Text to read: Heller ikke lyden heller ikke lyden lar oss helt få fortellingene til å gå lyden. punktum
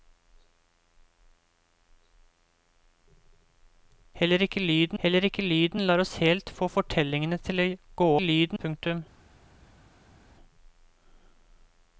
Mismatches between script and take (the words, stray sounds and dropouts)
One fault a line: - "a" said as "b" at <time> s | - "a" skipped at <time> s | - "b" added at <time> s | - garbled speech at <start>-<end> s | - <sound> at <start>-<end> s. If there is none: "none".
none